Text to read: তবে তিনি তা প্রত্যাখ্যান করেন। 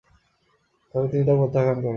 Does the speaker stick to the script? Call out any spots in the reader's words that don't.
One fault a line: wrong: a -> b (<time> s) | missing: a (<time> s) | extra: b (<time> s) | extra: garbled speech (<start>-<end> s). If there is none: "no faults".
no faults